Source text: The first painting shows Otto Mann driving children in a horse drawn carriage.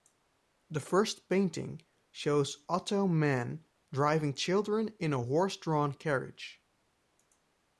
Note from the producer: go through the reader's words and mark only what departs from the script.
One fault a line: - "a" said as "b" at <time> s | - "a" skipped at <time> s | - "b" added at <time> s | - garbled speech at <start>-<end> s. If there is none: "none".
none